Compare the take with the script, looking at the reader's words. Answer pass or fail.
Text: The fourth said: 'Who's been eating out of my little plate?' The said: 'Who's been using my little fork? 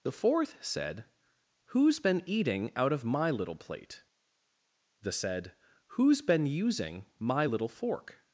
pass